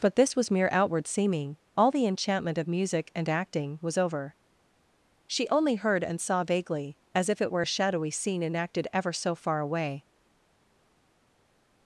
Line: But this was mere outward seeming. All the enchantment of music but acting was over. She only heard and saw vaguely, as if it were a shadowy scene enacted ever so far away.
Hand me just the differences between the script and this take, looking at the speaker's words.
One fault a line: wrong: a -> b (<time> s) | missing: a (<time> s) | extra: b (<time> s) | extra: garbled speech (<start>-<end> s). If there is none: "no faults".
wrong: but -> and (3.1 s)